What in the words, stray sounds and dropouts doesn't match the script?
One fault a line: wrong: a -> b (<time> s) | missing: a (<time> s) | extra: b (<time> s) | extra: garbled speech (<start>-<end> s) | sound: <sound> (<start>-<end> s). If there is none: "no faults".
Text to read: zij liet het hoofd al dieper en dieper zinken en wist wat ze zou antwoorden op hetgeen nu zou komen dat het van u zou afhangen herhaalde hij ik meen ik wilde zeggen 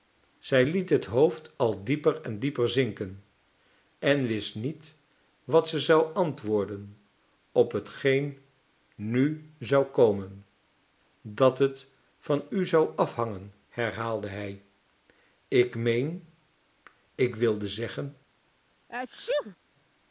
extra: niet (4.6 s)
sound: sneeze (18.9-19.6 s)